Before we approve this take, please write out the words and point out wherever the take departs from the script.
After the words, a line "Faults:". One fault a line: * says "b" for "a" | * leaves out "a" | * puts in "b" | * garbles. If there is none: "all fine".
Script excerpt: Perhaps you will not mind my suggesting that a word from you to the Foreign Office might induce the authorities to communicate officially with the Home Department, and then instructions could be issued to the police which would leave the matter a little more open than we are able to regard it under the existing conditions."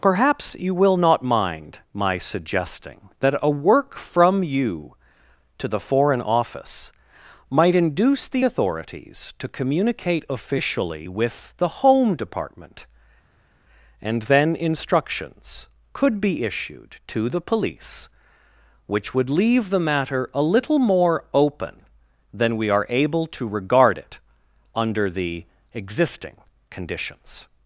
Perhaps you will not mind my suggesting that a work from you to the Foreign Office might induce the authorities to communicate officially with the Home Department, and then instructions could be issued to the police which would leave the matter a little more open than we are able to regard it under the existing conditions."
Faults:
* says "work" for "word"